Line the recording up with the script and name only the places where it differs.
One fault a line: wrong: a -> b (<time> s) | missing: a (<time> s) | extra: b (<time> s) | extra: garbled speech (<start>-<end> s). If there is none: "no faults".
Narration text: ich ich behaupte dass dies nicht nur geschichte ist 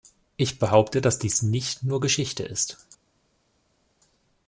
missing: ich (0.6 s)